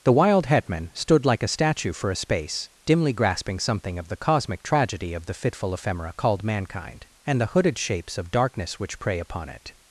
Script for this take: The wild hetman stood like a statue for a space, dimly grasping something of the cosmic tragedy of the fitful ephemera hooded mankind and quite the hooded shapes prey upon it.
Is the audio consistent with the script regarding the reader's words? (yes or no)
no